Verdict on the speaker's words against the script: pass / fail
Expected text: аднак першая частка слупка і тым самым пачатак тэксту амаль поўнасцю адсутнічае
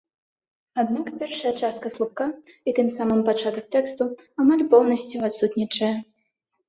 pass